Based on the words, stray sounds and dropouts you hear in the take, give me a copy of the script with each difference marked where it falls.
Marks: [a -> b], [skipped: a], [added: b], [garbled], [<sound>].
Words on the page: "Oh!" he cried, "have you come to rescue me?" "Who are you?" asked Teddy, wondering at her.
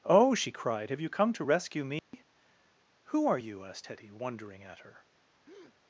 "Oh!" [he -> she] cried, "have you come to rescue me?" [dropout] "Who are you?" asked Teddy, wondering at her. [breath]